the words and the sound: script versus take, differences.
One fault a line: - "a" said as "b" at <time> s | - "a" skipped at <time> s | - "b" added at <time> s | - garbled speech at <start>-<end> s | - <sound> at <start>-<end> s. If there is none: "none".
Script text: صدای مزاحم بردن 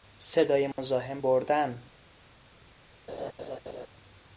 - dropout at 0.7-0.8 s
- laugh at 3.1-3.9 s